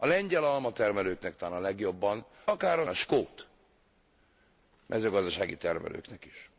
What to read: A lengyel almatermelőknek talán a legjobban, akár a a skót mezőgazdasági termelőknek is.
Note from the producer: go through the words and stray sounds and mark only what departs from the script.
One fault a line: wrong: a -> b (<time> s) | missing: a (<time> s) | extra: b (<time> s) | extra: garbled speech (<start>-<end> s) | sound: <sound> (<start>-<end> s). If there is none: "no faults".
no faults